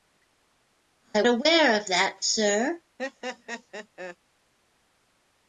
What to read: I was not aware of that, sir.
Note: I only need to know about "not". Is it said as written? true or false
false